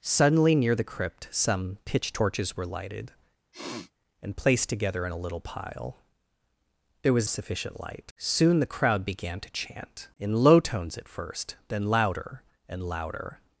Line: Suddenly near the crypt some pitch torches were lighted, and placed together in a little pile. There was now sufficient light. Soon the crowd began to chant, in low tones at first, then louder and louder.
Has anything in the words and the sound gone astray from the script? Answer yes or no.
yes